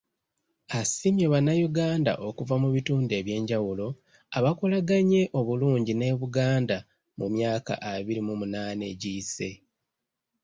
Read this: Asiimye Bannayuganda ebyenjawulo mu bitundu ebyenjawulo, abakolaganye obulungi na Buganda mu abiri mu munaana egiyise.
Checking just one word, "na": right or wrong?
wrong